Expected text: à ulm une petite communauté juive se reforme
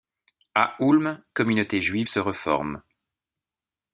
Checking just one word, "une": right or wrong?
wrong